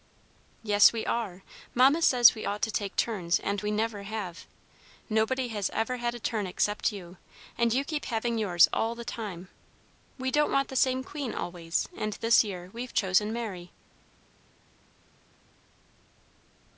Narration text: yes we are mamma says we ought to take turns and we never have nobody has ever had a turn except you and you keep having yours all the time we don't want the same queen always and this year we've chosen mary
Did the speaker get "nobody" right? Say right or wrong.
right